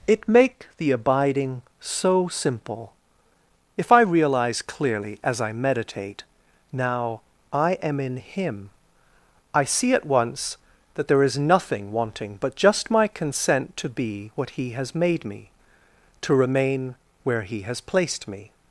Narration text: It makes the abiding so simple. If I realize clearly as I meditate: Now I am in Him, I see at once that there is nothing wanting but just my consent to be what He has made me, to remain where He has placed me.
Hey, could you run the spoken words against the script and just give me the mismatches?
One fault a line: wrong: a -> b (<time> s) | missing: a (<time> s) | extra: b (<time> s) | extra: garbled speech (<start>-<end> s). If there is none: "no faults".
wrong: makes -> make (0.3 s)